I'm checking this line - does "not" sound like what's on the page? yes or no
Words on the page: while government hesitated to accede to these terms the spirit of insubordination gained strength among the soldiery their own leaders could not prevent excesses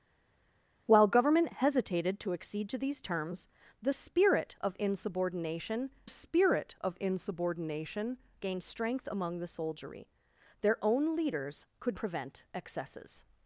no